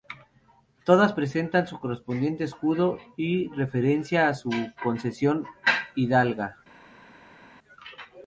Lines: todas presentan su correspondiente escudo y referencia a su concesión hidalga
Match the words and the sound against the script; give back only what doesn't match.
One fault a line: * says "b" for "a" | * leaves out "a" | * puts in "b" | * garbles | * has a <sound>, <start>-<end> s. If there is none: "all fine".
all fine